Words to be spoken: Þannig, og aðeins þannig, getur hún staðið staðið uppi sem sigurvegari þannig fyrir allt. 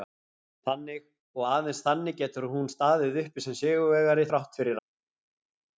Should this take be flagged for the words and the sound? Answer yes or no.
yes